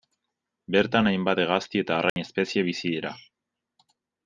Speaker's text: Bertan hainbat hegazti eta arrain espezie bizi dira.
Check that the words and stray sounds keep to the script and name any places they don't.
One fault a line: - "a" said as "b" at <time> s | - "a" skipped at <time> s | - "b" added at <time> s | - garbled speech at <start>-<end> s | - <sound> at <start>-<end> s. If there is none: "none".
- dropout at 2.1-2.2 s